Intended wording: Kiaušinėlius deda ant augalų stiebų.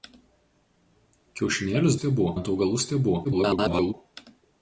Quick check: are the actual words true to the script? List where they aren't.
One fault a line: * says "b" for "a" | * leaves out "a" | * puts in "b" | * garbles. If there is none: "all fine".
* says "stiebų" for "deda"
* garbles